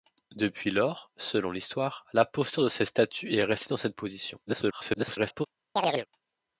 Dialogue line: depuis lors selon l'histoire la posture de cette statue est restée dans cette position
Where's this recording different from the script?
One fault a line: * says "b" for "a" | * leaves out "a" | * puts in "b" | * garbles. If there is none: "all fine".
* garbles